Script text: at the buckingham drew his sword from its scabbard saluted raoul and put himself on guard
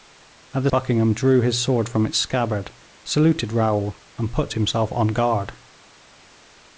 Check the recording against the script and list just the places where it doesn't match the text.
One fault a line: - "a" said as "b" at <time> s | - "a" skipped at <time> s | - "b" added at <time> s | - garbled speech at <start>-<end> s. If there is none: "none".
none